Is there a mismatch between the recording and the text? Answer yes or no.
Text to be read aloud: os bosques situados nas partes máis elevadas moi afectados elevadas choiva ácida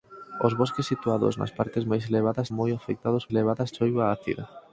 no